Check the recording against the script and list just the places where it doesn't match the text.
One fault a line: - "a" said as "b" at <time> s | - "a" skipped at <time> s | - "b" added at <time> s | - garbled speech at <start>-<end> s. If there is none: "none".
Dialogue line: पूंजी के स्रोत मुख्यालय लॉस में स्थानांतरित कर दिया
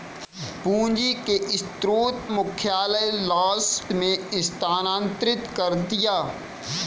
none